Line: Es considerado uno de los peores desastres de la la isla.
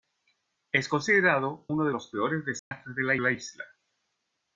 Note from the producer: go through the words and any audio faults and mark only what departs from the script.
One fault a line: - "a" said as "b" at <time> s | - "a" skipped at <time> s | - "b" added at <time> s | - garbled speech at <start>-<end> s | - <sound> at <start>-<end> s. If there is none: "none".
- dropout at 2.6-2.7 s